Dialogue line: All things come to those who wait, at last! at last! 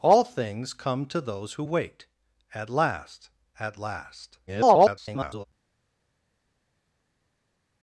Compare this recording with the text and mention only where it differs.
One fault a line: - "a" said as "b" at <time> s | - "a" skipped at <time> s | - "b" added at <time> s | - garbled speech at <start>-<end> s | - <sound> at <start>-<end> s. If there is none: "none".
- garbled speech at 4.5-5.4 s